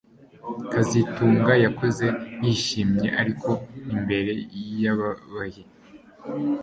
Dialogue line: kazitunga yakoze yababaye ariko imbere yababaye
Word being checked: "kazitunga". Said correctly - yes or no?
yes